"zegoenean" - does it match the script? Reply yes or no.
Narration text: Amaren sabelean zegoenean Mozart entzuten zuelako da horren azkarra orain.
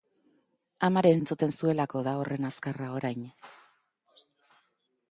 no